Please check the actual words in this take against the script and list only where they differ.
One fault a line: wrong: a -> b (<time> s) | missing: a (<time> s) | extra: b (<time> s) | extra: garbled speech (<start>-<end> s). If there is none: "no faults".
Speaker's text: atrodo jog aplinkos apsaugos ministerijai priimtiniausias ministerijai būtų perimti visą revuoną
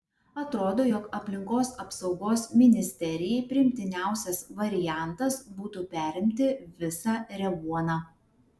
wrong: ministerijai -> variantas (4.6 s)